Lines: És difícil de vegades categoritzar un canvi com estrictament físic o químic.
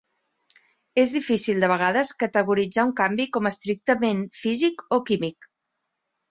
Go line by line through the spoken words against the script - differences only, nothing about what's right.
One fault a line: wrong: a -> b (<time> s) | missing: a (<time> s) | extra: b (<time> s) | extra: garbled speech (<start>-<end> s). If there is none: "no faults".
no faults